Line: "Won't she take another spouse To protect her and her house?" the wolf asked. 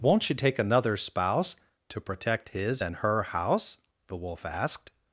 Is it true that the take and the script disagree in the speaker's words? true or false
true